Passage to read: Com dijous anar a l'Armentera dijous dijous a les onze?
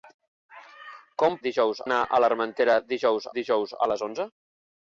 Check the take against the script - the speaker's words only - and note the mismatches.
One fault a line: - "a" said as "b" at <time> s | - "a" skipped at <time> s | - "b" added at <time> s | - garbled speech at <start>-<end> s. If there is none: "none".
none